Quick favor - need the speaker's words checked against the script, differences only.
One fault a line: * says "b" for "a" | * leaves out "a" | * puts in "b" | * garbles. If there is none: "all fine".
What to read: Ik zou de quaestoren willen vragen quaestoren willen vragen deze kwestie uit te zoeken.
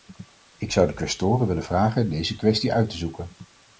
* leaves out "quaestoren willen vragen"